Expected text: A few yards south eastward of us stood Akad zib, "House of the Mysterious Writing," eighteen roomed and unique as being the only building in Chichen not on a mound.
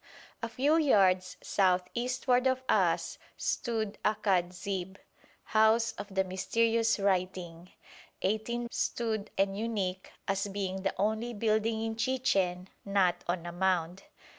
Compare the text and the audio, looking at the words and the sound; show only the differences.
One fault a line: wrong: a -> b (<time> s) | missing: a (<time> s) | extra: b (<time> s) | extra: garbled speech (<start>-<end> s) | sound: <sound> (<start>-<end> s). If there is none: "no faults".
wrong: roomed -> stood (8.7 s)